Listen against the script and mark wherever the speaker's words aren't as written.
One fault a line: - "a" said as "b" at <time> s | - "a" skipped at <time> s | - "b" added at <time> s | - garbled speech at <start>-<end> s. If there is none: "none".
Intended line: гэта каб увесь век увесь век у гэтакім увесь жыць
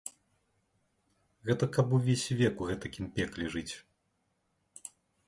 - "увесь век" skipped at 2.5 s
- "увесь" said as "пекле" at 3.2 s